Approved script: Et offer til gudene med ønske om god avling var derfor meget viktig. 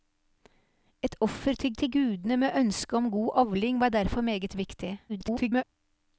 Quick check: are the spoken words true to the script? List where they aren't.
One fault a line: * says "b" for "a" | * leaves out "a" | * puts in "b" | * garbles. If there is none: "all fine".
* puts in "til"
* garbles